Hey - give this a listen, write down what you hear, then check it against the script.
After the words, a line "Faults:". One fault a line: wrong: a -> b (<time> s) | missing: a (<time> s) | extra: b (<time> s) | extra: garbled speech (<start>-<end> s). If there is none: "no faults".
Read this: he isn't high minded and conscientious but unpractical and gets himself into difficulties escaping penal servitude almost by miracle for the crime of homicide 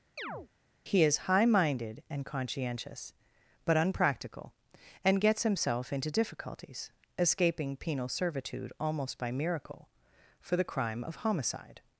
he is high minded and conscientious but unpractical and gets himself into difficulties escaping penal servitude almost by miracle for the crime of homicide
Faults:
wrong: isn't -> is (1.0 s)